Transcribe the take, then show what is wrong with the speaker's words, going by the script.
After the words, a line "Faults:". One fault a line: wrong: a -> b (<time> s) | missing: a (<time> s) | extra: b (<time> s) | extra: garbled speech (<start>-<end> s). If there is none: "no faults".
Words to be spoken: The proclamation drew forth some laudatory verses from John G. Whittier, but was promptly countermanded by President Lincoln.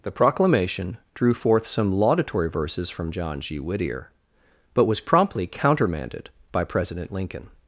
The proclamation drew forth some laudatory verses from John G. Whittier, but was promptly countermanded by President Lincoln.
Faults:
no faults